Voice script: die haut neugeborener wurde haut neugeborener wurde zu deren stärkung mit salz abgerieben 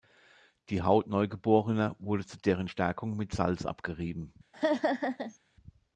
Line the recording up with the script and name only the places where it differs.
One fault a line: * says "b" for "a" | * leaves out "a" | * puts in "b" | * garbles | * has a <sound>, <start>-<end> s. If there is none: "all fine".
* leaves out "haut neugeborener wurde"
* has a laugh, 4.5-5.4 s